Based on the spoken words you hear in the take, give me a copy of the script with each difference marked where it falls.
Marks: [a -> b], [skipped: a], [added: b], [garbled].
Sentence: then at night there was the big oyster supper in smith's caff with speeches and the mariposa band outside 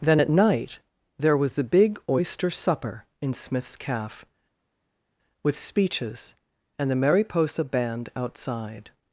then at night there was the big oyster supper in smith's caff with speeches and the mariposa band outside